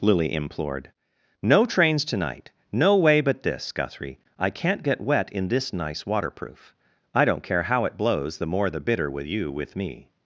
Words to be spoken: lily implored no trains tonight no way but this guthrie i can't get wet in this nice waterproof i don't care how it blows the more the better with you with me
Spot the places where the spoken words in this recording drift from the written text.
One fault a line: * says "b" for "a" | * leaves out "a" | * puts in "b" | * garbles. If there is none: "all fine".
* says "bitter" for "better"